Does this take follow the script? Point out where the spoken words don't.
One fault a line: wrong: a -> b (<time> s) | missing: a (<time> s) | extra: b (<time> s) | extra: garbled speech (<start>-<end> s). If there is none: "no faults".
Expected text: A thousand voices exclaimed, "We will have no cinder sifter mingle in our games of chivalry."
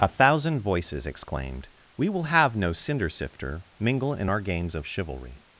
no faults